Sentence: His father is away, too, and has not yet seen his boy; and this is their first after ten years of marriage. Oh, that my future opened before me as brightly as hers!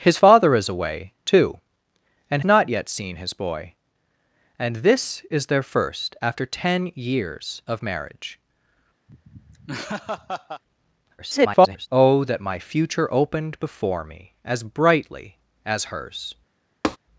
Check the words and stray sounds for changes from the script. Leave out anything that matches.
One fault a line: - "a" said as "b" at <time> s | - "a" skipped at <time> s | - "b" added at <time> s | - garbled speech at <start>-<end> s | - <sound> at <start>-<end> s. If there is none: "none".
- "has" skipped at 2.4 s
- laugh at 9.1-10.6 s
- garbled speech at 11.2-11.9 s
- tap at 16.8-17.0 s